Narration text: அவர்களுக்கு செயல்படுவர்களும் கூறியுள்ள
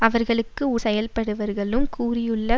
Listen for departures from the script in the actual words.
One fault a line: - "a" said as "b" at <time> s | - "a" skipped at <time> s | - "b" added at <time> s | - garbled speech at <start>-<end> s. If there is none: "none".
none